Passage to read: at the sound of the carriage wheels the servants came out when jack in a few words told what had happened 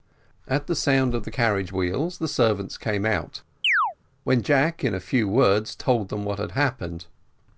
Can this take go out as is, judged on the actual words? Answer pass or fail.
fail